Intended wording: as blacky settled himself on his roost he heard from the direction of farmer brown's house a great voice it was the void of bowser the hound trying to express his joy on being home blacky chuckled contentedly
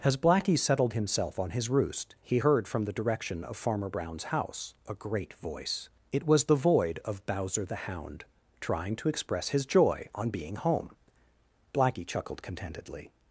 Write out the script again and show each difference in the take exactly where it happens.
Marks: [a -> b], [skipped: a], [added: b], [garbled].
as blacky settled himself on his roost he heard from the direction of farmer brown's house a great voice it was the void of bowser the hound trying to express his joy on being home blacky chuckled contentedly